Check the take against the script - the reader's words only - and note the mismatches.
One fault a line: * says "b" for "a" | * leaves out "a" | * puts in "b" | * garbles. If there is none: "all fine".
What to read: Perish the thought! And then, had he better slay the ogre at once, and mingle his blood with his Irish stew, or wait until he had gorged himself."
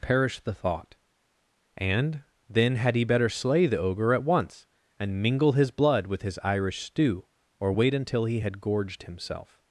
all fine